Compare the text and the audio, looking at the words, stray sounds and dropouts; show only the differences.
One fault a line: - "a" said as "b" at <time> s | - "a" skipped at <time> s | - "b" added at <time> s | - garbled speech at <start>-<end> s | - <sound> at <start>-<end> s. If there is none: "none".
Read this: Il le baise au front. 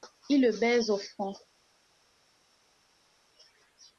none